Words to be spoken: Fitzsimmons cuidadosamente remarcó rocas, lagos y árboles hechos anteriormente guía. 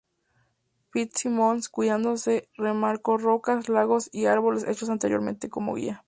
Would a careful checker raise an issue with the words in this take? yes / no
yes